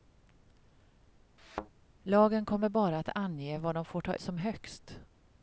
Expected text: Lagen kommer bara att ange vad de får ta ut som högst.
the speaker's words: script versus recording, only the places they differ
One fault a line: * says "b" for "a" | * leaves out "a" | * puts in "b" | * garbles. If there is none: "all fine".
* leaves out "ut"